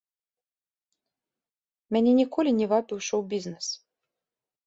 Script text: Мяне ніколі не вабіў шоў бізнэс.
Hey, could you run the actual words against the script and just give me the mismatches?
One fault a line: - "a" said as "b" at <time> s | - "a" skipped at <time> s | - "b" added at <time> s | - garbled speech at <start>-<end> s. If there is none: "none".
none